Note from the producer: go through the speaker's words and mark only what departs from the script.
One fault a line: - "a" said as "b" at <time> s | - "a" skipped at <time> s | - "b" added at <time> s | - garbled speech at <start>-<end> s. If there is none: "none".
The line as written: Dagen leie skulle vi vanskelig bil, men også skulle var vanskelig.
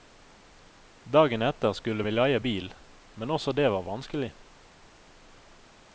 - "leie" said as "etter" at 1.4 s
- "vanskelig" said as "leie" at 2.1 s
- "skulle" said as "det" at 3.6 s